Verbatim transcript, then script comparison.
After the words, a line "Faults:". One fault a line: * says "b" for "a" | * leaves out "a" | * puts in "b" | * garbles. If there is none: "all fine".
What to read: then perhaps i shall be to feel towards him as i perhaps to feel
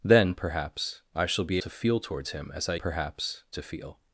then perhaps i shall be to feel towards him as i perhaps to feel
Faults:
all fine